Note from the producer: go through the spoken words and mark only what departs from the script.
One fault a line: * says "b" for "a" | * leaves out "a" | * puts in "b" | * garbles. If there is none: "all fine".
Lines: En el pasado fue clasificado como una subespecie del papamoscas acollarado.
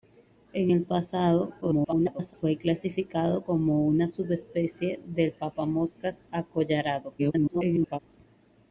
* garbles
* garbles